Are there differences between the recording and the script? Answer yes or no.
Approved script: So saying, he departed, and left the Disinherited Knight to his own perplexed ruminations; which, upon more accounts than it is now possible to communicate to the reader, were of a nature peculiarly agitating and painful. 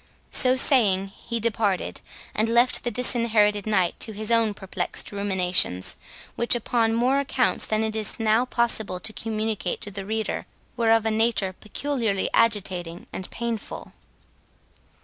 no